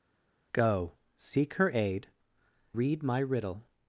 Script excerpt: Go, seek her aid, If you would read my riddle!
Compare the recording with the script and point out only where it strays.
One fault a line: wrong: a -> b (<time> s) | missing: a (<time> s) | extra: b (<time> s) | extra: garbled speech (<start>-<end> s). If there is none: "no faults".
missing: If you would (2.1 s)